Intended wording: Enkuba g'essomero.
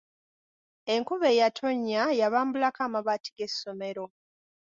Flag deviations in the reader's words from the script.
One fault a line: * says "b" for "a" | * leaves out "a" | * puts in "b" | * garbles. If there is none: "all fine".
* puts in "eyatonnya yabambulako amabaati"